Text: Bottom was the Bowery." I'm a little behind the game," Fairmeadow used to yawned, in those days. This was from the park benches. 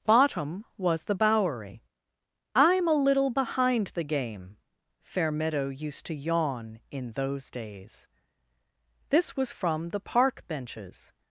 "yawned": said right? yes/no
no